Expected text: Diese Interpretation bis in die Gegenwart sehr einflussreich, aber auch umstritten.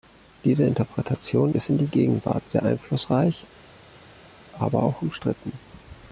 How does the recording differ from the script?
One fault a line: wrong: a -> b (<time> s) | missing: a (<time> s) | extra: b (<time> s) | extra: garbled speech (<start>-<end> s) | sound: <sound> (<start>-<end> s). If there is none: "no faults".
no faults